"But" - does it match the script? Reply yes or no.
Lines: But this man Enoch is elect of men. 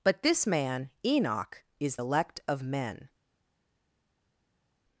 yes